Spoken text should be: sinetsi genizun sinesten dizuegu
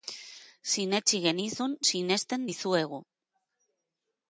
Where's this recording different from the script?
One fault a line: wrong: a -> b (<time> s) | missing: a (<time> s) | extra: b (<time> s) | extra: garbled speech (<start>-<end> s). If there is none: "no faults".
no faults